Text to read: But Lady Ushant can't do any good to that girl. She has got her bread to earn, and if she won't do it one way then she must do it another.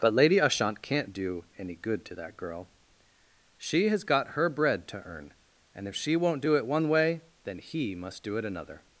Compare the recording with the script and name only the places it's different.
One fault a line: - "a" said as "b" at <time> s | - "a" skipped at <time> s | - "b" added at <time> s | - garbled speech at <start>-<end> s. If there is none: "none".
- "she" said as "he" at 7.6 s